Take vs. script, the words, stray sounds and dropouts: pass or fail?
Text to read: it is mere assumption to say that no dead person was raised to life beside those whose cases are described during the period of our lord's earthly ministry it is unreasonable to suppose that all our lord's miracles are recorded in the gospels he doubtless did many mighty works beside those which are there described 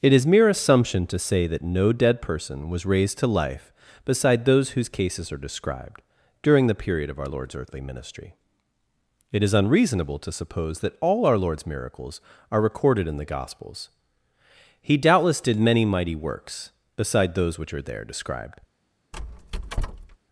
fail